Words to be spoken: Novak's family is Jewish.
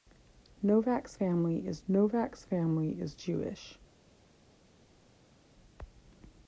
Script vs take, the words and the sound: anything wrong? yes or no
yes